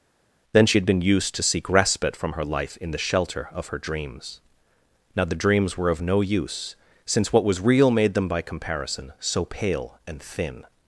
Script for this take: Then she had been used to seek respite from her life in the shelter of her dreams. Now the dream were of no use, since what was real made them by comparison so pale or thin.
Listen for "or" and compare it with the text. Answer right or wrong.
wrong